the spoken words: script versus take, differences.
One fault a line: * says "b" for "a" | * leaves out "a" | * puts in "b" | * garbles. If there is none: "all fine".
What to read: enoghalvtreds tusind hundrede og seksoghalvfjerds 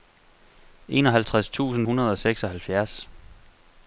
all fine